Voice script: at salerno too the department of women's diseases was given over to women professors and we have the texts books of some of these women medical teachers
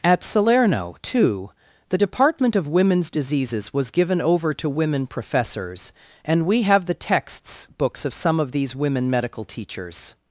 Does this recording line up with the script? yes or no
yes